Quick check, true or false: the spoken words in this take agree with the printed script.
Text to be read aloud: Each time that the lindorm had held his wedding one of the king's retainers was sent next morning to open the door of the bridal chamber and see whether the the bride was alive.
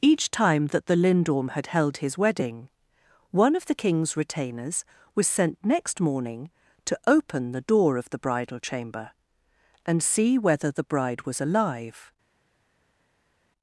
false